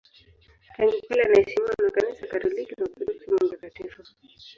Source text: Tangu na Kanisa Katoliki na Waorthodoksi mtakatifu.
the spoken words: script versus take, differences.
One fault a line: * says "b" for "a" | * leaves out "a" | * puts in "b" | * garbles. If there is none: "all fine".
* puts in "kale anaheshimiwa"
* puts in "kama"